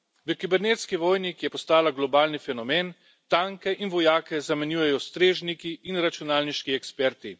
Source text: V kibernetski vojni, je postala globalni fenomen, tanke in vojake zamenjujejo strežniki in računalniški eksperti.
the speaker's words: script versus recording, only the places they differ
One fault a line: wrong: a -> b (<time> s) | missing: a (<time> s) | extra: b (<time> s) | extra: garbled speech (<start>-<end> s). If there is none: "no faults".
extra: ki (1.3 s)